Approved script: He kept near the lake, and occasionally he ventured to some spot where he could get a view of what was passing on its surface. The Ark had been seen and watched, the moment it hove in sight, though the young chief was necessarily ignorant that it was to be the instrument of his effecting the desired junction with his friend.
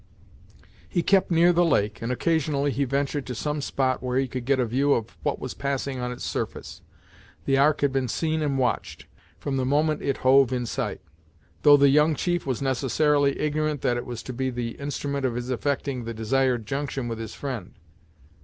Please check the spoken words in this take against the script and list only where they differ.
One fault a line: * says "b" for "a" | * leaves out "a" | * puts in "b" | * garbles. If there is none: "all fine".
* puts in "from"